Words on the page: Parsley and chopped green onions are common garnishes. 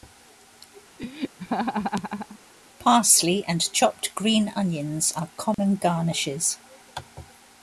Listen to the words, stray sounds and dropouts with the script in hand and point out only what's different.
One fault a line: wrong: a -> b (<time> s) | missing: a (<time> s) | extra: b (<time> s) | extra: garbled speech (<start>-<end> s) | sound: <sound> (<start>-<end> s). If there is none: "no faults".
sound: laugh (1.0-2.4 s)
sound: dropout (5.5-5.6 s)